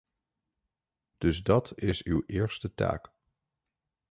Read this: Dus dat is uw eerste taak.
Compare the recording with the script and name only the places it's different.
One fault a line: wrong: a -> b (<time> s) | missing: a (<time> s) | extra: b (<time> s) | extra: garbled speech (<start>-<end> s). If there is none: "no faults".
no faults